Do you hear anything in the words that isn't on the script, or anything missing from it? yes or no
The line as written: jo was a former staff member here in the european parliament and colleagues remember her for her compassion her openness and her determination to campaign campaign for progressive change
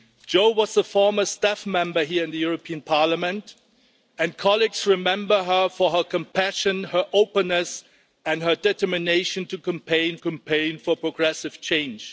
no